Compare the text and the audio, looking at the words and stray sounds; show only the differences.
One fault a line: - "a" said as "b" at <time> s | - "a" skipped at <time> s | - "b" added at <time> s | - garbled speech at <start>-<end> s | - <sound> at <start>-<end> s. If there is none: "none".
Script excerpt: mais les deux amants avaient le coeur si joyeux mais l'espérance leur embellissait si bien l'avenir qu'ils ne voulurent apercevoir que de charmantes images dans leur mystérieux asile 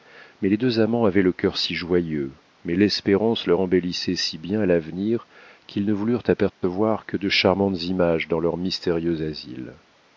- dropout at 6.5-6.6 s